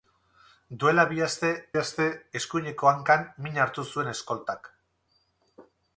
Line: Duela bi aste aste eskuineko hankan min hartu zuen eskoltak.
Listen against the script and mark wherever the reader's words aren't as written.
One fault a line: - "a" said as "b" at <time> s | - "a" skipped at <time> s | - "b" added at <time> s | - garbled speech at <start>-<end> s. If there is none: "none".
none